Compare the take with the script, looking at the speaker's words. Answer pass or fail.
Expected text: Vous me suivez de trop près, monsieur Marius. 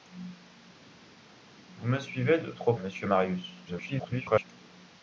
fail